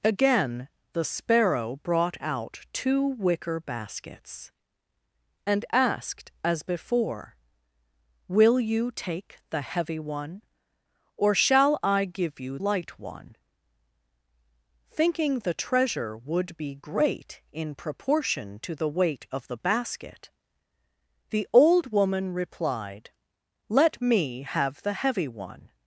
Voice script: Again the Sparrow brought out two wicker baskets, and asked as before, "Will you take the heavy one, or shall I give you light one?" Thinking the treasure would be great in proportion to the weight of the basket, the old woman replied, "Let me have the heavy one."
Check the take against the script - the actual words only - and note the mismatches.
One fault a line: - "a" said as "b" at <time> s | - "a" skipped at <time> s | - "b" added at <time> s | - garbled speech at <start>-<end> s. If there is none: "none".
none